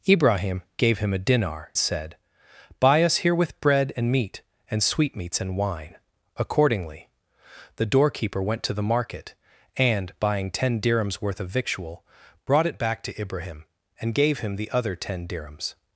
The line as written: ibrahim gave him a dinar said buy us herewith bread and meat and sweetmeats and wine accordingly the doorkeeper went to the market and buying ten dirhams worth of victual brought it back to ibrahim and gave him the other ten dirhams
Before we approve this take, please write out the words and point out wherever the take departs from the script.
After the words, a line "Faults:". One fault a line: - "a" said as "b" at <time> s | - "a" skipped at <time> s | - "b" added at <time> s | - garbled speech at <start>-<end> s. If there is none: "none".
ibrahim gave him a dinar said buy us herewith bread and meat and sweetmeats and wine accordingly the doorkeeper went to the market and buying ten dirhams worth of victual brought it back to ibrahim and gave him the other ten dirhams
Faults:
none